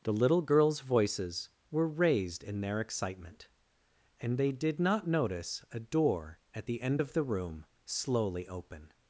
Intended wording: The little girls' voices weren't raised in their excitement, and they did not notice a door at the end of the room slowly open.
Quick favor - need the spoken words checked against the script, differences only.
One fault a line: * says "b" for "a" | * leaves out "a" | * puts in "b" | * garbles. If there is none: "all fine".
* says "were" for "weren't"